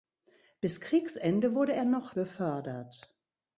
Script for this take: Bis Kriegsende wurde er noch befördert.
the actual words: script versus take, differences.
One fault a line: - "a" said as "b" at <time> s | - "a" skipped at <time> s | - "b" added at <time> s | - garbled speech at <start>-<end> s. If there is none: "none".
none